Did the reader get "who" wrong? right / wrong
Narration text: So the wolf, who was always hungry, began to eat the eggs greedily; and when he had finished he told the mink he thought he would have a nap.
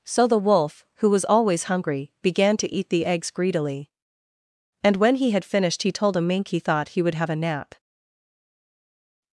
right